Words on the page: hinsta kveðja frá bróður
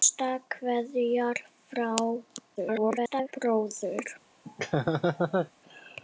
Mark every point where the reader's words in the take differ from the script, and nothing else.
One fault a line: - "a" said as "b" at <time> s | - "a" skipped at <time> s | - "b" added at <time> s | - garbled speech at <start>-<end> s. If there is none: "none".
- garbled speech at 2.6-3.3 s